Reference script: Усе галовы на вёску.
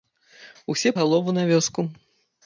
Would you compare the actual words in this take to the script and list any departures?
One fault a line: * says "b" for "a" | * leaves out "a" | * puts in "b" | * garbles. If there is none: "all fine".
all fine